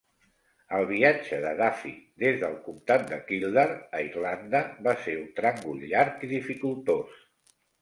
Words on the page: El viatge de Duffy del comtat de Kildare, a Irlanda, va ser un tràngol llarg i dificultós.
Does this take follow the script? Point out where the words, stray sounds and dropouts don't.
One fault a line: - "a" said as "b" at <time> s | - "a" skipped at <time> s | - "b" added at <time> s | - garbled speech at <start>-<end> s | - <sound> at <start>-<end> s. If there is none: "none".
- "des" added at 2.2 s